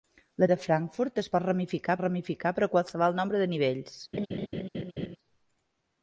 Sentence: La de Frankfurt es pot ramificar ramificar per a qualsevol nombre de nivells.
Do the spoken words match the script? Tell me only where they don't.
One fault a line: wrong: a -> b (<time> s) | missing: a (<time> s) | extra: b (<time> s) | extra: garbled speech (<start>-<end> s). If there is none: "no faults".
no faults